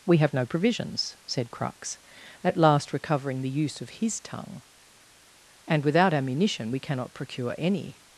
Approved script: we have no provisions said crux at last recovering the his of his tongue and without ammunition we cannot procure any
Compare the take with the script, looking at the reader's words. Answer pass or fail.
fail